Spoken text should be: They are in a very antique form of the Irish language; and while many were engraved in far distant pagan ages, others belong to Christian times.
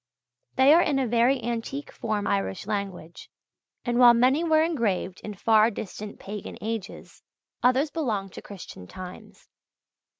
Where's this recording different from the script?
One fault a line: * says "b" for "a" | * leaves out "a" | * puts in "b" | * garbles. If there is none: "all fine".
* leaves out "of the"